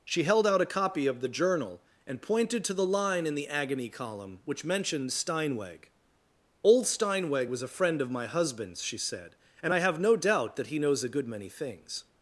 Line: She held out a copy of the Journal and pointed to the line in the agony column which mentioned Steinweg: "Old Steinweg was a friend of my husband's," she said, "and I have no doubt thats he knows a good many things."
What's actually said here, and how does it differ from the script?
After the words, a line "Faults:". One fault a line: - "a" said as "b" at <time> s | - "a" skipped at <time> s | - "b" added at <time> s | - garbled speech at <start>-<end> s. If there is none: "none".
She held out a copy of the Journal and pointed to the line in the agony column which mentioned Steinweg: "Old Steinweg was a friend of my husband's," she said, "and I have no doubt that he knows a good many things."
Faults:
- "thats" said as "that" at 10.6 s